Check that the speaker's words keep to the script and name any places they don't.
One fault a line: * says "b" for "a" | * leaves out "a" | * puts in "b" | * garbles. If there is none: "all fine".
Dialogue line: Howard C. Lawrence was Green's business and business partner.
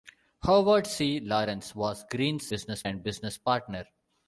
all fine